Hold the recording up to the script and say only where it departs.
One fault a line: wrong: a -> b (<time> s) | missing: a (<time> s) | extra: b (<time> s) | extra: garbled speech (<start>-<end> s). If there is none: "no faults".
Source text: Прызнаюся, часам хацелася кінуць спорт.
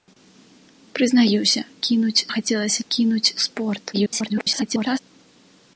wrong: часам -> кінуць (1.9 s)
extra: garbled speech (3.9-5.0 s)